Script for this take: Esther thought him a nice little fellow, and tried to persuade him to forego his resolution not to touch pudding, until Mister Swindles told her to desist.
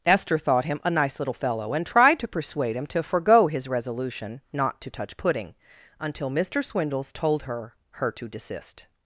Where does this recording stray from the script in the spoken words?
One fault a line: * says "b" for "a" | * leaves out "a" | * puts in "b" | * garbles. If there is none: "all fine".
* puts in "her"